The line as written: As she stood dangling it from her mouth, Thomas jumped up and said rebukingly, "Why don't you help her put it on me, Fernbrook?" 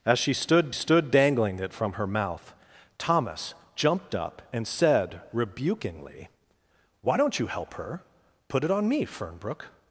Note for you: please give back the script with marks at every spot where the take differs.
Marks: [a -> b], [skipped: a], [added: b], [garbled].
As she stood [added: stood] dangling it from her mouth, Thomas jumped up and said rebukingly, "Why don't you help her put it on me, Fernbrook?"